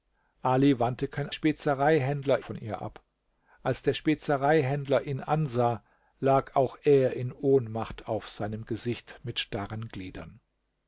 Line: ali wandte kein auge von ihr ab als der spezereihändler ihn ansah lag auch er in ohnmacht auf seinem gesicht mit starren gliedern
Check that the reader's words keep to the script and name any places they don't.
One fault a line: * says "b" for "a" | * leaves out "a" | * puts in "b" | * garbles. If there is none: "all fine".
* says "spezereihändler" for "auge"